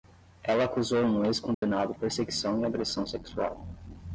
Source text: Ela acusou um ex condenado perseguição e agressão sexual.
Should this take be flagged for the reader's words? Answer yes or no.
no